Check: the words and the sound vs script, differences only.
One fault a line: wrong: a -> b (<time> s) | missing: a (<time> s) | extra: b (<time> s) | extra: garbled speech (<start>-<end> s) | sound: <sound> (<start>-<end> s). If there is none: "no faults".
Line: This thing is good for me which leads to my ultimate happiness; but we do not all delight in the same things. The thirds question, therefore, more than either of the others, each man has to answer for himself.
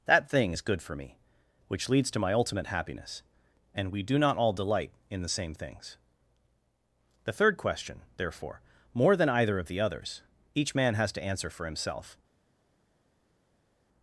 wrong: This -> That (0.1 s)
wrong: but -> and (3.8 s)
wrong: thirds -> third (7.3 s)